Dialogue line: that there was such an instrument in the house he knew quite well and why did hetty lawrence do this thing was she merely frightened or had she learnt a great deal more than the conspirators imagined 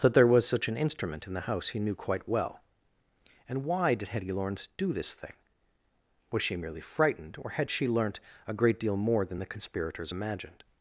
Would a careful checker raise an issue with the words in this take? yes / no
no